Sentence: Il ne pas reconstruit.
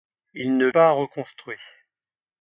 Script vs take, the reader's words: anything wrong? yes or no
no